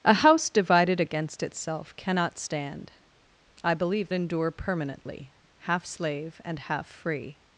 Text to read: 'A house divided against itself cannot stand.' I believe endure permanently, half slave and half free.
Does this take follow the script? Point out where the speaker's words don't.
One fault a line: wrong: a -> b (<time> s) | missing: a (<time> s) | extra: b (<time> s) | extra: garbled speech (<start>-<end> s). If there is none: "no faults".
no faults